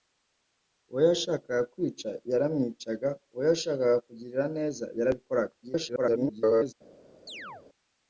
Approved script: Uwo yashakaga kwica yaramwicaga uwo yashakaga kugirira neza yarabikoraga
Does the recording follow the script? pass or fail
fail